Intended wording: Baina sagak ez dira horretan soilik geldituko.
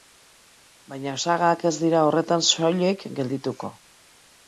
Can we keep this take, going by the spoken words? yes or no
yes